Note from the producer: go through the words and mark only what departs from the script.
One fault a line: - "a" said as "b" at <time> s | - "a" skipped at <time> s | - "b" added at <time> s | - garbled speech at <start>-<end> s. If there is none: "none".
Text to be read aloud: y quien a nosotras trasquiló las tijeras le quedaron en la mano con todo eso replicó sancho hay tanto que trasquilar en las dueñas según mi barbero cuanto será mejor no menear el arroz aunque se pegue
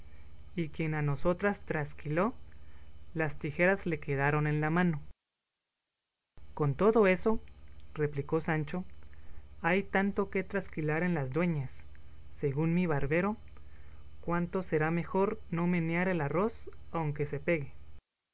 none